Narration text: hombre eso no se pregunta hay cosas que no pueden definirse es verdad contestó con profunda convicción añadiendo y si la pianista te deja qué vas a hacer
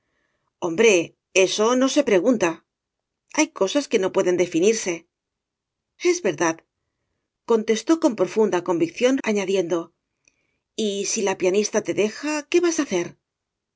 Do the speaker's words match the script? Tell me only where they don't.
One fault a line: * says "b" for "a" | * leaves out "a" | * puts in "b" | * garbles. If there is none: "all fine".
all fine